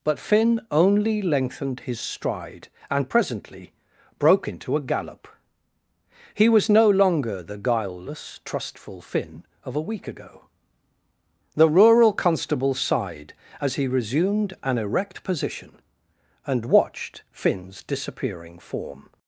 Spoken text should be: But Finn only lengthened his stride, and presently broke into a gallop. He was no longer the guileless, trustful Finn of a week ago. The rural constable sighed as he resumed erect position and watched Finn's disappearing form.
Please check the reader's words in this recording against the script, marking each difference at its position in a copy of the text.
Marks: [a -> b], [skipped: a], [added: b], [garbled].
But Finn only lengthened his stride, and presently broke into a gallop. He was no longer the guileless, trustful Finn of a week ago. The rural constable sighed as he resumed [added: an] erect position and watched Finn's disappearing form.